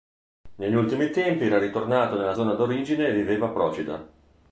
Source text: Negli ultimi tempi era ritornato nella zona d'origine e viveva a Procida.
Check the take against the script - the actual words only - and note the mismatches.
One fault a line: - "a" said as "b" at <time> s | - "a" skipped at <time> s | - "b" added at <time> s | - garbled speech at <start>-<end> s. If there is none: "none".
none